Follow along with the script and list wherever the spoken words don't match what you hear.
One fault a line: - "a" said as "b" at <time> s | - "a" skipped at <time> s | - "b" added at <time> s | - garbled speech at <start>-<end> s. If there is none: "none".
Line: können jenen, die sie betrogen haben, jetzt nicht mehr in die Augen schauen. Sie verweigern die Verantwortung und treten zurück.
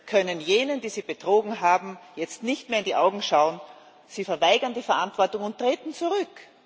none